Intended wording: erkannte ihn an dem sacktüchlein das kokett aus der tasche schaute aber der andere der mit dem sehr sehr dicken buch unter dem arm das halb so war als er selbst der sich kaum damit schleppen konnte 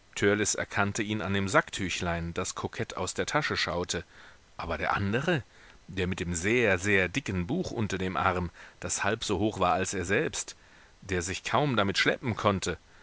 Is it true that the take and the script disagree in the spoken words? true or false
true